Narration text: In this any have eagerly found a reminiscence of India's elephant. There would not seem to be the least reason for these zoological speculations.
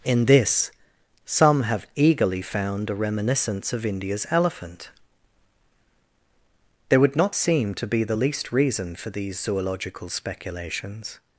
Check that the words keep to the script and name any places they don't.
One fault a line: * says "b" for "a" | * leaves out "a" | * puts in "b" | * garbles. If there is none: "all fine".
* says "some" for "any"